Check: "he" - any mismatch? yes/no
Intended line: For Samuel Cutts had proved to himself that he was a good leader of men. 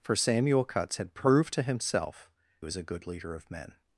yes